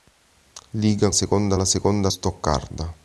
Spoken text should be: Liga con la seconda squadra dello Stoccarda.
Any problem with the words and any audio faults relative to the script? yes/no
yes